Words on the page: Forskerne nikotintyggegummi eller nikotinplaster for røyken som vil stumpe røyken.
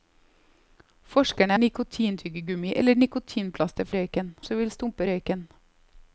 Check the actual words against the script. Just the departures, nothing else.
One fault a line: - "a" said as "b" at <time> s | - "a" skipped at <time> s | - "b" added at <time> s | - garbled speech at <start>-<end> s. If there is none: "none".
none